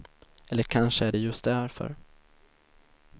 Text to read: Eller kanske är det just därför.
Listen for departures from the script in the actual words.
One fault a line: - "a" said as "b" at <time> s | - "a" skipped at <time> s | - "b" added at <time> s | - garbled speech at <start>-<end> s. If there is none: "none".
none